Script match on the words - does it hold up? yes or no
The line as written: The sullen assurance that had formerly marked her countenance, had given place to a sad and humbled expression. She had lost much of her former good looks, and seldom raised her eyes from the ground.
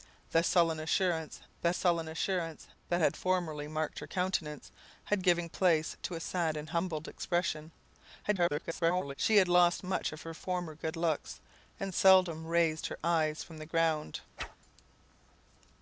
no